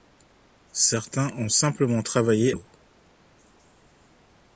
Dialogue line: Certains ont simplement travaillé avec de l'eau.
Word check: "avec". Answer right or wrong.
wrong